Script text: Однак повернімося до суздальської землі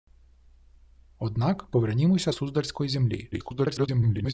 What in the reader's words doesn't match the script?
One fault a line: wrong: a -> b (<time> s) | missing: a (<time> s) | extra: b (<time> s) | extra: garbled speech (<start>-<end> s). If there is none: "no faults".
missing: до (2.3 s)
extra: garbled speech (3.3-4.3 s)